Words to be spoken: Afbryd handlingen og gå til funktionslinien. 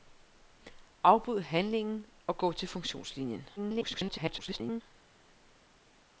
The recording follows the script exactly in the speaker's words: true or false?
false